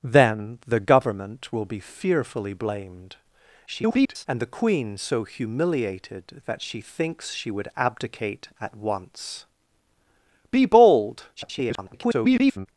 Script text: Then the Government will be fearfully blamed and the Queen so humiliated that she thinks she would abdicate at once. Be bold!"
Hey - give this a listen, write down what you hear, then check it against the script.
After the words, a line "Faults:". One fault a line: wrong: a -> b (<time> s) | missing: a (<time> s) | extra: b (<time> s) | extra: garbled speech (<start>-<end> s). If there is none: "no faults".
Then the Government will be fearfully blamed [garbled] and the Queen so humiliated that she thinks she would abdicate at once. Be bold!" [garbled]
Faults:
extra: garbled speech (3.7-4.3 s)
extra: garbled speech (11.4-12.7 s)